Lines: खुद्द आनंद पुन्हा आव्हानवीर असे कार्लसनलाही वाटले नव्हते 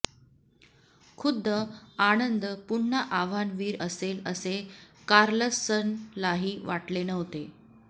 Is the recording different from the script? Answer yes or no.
yes